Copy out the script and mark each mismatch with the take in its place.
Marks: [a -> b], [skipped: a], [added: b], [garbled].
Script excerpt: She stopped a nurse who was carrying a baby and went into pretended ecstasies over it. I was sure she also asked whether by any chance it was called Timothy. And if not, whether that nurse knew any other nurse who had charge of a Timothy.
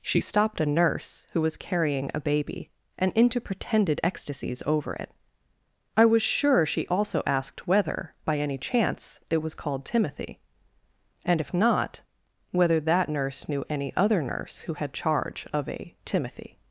She stopped a nurse who was carrying a baby and [skipped: went] into pretended ecstasies over it. I was sure she also asked whether by any chance it was called Timothy. And if not, whether that nurse knew any other nurse who had charge of a Timothy.